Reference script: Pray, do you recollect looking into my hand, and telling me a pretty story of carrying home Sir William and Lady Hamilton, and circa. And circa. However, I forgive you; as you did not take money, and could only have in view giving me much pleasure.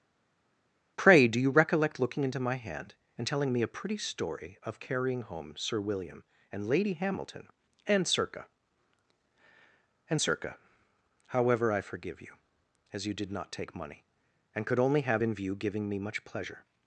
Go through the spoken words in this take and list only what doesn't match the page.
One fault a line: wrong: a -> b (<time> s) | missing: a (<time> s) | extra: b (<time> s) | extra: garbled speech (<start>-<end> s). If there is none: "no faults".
no faults